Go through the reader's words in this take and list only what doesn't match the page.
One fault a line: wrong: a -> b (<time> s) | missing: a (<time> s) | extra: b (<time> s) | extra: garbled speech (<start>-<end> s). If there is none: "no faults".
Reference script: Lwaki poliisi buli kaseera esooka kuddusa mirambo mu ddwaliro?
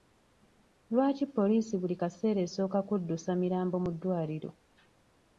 no faults